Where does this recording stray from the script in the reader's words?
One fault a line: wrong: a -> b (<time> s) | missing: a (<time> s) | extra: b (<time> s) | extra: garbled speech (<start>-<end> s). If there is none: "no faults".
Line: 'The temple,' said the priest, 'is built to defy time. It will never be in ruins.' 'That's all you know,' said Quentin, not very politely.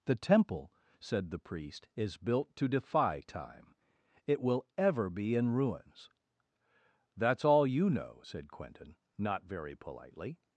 wrong: never -> ever (4.8 s)